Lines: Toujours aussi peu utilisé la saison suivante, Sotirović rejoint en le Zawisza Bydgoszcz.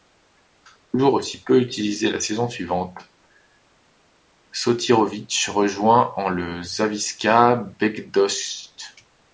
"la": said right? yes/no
yes